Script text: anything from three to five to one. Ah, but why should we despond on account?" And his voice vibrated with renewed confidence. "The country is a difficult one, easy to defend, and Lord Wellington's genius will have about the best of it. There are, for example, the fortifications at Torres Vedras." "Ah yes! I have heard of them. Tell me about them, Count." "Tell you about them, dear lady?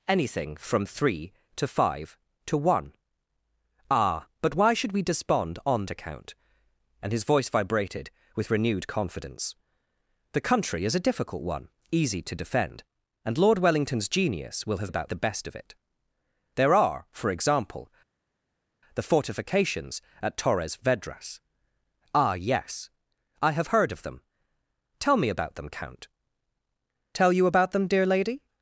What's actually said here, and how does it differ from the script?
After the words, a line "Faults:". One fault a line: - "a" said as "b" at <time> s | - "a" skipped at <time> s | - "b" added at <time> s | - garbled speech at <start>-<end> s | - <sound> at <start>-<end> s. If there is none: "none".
anything from three to five to one. Ah, but why should we despond on account?" And his voice vibrated with renewed confidence. "The country is a difficult one, easy to defend, and Lord Wellington's genius will have about the best of it. There are, for example, the fortifications at Torres Vedras." "Ah yes! I have heard of them. Tell me about them, Count." "Tell you about them, dear lady?
Faults:
none